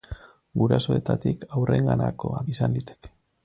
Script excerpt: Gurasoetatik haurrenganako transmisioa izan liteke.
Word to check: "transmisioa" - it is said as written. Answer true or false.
false